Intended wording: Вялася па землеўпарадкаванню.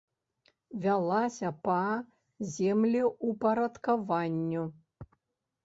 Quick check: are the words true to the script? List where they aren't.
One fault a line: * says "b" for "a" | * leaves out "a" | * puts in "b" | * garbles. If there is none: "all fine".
all fine